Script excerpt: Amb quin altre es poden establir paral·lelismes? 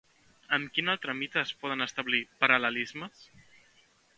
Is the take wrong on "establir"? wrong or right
right